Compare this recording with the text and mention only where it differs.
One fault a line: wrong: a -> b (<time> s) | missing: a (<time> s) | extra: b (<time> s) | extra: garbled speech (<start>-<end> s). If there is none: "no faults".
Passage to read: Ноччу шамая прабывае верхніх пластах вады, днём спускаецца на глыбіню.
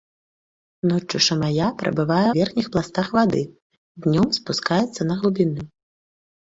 no faults